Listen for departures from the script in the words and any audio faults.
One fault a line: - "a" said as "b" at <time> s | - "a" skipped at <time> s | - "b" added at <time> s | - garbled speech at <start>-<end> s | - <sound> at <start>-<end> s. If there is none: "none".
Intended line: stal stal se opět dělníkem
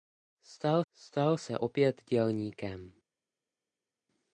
none